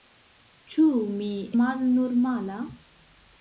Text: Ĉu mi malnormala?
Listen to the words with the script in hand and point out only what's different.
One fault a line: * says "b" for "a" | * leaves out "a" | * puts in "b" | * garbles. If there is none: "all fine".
all fine